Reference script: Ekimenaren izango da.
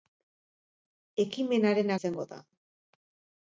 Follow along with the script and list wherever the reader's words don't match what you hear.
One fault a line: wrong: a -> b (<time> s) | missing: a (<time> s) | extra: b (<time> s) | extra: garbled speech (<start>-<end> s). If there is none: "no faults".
no faults